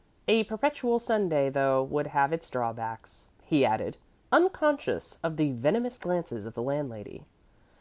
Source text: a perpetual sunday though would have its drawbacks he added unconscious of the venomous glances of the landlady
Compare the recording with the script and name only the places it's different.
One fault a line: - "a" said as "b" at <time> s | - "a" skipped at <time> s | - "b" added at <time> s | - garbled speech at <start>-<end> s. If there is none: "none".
none